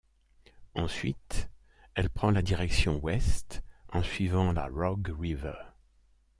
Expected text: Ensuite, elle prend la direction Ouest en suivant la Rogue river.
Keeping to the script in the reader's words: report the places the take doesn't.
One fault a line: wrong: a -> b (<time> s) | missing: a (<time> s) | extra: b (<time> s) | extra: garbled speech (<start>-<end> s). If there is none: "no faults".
no faults